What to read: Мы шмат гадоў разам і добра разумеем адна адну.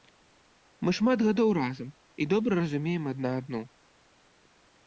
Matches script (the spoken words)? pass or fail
pass